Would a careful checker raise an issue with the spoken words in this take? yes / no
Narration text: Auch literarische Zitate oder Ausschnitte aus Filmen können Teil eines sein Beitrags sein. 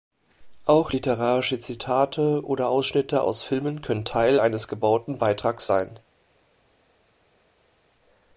yes